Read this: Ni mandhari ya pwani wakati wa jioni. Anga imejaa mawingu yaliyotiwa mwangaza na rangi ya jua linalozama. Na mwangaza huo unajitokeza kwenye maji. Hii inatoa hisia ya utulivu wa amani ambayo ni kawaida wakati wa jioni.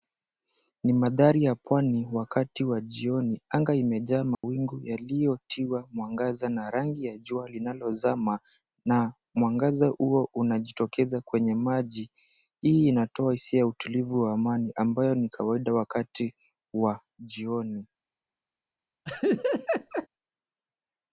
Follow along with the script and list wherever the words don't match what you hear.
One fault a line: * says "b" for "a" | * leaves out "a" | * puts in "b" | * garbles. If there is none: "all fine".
all fine